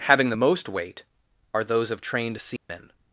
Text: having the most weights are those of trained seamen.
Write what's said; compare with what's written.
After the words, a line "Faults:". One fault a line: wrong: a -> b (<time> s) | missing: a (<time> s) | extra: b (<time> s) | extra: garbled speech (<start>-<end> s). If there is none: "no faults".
having the most weight are those of trained seamen.
Faults:
wrong: weights -> weight (0.7 s)